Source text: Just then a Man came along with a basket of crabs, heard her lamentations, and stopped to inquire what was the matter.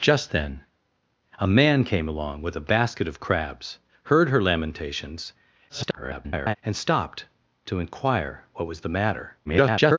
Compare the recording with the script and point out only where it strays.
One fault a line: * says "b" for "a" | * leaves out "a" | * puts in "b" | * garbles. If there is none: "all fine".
* garbles
* garbles